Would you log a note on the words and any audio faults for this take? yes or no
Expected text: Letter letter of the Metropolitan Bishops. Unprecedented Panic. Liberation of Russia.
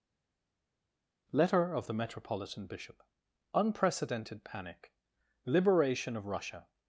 yes